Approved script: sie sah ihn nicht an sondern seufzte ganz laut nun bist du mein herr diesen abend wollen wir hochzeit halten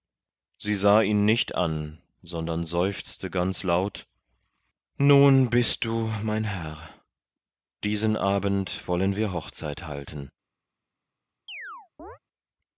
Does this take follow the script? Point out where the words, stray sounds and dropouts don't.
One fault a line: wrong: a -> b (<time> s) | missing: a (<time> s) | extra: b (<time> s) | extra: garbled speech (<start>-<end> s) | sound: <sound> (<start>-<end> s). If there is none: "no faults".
sound: chirp (11.5-12.2 s)